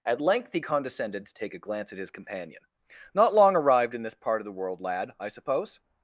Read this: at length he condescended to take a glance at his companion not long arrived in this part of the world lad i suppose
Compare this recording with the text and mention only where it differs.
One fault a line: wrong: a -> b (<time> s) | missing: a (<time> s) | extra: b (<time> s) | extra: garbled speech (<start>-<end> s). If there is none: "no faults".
no faults